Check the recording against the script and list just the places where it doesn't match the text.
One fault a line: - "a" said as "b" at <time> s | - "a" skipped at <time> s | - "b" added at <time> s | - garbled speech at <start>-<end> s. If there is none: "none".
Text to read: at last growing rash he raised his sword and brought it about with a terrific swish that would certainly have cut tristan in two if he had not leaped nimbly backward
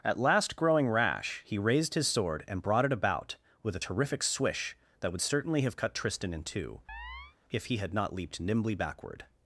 none